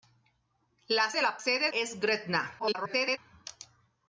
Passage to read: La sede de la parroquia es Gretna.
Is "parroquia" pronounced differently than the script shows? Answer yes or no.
yes